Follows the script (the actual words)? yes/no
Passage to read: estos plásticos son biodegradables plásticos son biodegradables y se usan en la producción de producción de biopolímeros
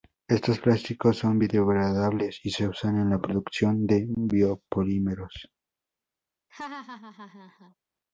no